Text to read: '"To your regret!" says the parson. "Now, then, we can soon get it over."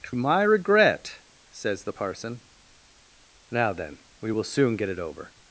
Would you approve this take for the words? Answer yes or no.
no